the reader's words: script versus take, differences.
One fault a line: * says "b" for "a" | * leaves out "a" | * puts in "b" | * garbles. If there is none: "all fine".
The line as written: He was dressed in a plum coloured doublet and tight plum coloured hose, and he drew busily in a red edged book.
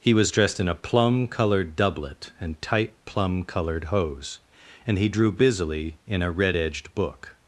all fine